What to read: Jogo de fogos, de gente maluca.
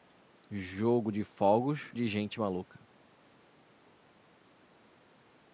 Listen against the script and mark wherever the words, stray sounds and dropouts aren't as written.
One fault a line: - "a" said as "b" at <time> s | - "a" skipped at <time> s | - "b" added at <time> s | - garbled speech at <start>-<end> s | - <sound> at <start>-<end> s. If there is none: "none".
none